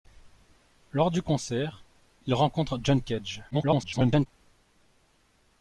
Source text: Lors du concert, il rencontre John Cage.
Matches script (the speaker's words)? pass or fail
fail